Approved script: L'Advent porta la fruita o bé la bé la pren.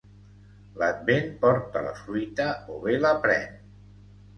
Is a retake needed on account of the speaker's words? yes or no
yes